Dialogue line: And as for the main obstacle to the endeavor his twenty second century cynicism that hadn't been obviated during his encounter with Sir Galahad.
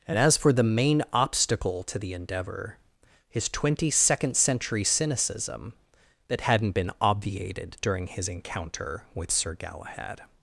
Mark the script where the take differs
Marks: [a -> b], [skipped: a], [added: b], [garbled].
And as for the main obstacle to the endeavor his twenty second century cynicism that hadn't been obviated during his encounter with Sir Galahad.